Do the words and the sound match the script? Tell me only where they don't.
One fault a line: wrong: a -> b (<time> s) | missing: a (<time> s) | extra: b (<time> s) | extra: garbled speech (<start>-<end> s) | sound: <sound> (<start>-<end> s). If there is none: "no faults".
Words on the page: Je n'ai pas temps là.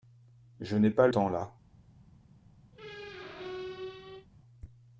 sound: squeak (2.7-4.3 s)